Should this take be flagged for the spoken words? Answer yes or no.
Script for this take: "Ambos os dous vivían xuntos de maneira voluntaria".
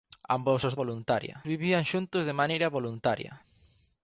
yes